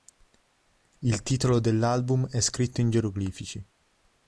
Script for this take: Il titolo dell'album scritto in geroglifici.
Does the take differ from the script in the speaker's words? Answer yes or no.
yes